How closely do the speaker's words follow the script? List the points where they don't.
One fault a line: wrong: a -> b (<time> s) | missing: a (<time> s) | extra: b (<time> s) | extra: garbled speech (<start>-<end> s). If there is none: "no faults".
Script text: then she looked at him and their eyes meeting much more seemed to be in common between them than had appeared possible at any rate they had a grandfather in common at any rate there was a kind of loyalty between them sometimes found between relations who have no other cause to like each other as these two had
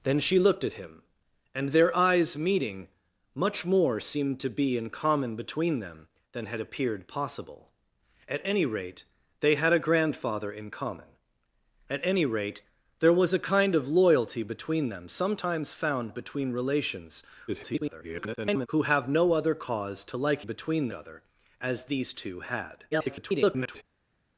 extra: garbled speech (17.5-18.7 s)
wrong: each -> between (20.4 s)
extra: garbled speech (22.9-23.8 s)